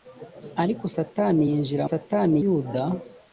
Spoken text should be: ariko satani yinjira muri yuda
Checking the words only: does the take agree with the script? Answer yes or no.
no